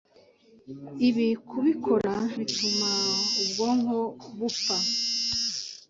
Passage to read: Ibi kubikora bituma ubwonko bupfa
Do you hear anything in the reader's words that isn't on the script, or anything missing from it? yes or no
no